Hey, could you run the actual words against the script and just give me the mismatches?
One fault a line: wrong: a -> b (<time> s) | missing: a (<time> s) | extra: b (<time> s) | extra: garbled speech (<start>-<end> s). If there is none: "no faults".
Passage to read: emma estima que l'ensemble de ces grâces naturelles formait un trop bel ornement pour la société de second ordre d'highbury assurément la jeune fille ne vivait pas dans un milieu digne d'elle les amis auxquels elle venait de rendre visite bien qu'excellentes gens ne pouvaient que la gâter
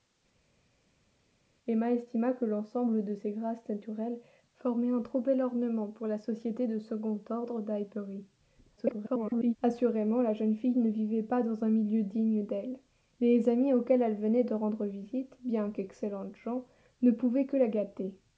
extra: garbled speech (8.8-9.6 s)